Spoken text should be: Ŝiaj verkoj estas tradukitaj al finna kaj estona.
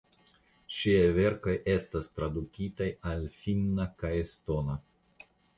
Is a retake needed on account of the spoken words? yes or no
no